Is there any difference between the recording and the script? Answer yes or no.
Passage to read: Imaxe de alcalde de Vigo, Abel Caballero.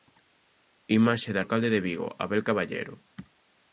no